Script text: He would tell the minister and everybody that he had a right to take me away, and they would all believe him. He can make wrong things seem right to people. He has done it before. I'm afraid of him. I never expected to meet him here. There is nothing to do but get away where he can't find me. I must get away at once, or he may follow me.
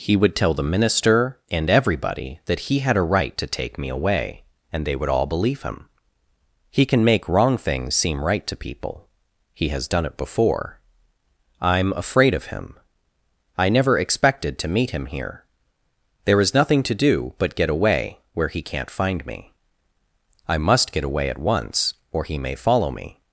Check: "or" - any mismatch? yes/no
no